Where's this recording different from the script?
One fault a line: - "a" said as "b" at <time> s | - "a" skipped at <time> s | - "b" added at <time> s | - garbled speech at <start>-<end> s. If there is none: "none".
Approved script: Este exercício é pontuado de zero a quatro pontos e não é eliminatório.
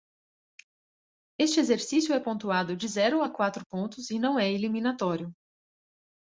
none